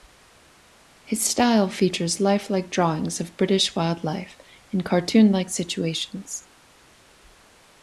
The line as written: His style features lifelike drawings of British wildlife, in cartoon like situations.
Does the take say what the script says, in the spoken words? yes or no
yes